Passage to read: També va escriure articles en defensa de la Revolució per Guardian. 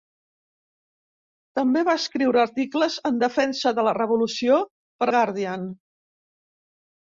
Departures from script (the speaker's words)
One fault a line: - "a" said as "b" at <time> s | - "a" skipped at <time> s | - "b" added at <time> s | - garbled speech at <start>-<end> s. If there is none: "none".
none